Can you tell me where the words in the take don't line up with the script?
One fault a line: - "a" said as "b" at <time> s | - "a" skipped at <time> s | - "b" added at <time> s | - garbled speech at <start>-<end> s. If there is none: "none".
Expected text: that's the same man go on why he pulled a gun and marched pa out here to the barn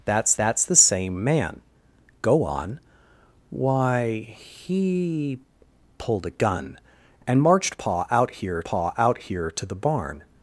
- "that's" added at 0.4 s
- "pa out here" added at 8.6 s